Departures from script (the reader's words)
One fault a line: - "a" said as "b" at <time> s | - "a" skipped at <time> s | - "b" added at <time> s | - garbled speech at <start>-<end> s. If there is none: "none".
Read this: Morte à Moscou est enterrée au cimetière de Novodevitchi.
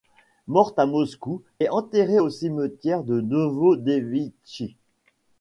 none